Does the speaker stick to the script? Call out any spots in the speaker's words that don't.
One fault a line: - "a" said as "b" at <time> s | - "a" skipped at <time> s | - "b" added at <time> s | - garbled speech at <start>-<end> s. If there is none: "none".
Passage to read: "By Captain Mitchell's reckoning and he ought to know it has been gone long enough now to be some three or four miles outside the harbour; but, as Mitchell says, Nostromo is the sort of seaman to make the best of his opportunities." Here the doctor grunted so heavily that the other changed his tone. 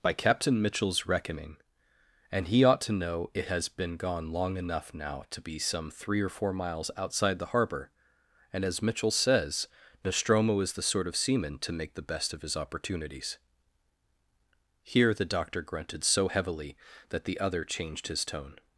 - "but" said as "and" at 8.5 s